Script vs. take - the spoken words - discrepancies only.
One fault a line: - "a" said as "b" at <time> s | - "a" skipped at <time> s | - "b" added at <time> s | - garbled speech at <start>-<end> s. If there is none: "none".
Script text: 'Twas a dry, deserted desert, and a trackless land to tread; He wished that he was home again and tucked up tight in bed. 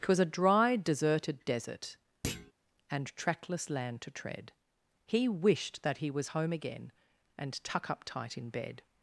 - "a" skipped at 3.2 s
- "tucked" said as "tuck" at 7.6 s